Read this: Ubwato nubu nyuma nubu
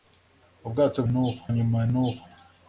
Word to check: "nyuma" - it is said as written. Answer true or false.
true